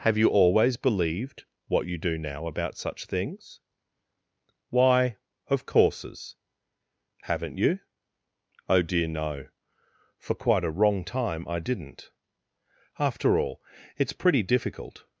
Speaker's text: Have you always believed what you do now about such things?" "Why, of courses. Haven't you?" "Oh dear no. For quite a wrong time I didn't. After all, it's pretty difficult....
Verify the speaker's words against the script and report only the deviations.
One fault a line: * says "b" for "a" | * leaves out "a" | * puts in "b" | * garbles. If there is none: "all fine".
all fine